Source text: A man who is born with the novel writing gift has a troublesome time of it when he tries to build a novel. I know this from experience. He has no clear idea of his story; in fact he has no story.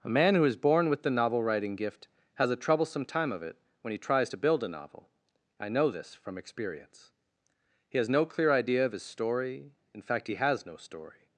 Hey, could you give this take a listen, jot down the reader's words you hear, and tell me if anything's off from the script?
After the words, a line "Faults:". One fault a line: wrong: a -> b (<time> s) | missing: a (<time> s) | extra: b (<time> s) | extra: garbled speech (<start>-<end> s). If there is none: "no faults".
A man who is born with the novel writing gift has a troublesome time of it when he tries to build a novel. I know this from experience. He has no clear idea of his story; in fact he has no story.
Faults:
no faults